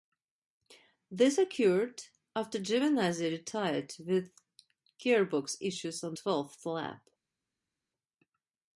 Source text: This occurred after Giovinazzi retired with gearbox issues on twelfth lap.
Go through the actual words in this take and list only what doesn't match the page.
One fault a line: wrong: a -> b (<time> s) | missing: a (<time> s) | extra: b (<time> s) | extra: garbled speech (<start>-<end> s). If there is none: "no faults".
no faults